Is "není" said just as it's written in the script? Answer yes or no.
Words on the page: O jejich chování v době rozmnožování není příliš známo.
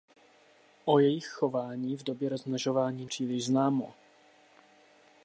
no